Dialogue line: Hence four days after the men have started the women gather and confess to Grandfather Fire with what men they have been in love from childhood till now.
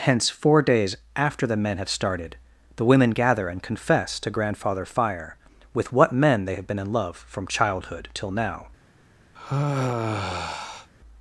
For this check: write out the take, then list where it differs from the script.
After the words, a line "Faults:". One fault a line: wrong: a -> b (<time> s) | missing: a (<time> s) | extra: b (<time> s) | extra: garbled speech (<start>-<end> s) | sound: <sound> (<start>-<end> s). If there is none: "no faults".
Hence four days after the men have started the women gather and confess to Grandfather Fire with what men they have been in love from childhood till now.
Faults:
sound: sigh (9.4-10.9 s)